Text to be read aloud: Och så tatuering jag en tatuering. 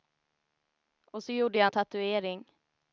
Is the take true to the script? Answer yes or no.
no